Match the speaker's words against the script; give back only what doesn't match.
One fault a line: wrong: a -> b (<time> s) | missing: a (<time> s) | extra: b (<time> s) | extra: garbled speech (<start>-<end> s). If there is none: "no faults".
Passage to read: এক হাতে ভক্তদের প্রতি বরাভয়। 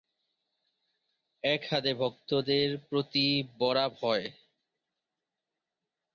no faults